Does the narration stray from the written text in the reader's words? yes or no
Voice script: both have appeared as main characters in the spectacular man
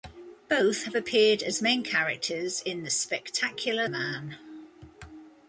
no